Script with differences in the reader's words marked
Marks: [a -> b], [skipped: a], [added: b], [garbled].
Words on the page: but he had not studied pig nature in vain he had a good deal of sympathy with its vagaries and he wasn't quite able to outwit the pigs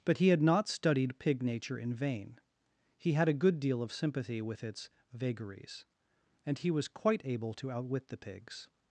but he had not studied pig nature in vain he had a good deal of sympathy with its vagaries and he [wasn't -> was] quite able to outwit the pigs